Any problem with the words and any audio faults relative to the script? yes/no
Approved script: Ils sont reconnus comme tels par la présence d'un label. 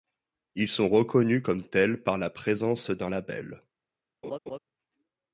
yes